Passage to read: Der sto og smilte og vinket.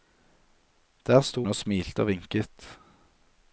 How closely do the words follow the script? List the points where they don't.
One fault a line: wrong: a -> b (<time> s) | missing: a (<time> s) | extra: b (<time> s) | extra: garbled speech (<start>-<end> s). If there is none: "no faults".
no faults